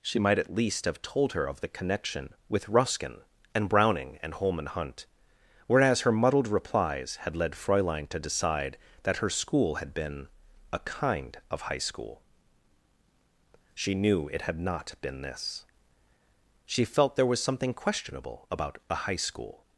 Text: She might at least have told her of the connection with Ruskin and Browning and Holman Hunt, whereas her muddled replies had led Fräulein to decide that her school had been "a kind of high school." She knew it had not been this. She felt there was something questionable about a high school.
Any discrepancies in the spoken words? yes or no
no